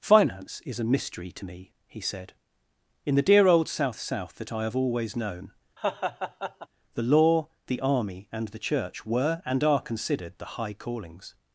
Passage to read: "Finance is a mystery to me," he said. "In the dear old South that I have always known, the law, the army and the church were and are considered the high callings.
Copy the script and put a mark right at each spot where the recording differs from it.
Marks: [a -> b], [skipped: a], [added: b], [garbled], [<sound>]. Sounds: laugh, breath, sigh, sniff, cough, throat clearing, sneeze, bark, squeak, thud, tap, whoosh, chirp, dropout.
"Finance is a mystery to me," he said. "In the dear old South [added: South] that I have always known, [laugh] the law, the army and the church were and are considered the high callings.